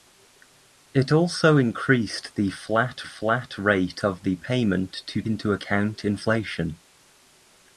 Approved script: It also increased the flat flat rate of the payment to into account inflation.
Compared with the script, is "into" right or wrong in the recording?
right